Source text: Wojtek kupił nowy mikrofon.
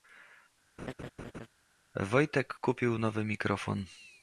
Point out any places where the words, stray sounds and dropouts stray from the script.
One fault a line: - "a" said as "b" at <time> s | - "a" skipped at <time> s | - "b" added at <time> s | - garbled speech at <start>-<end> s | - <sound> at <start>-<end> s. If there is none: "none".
- laugh at 0.8-1.5 s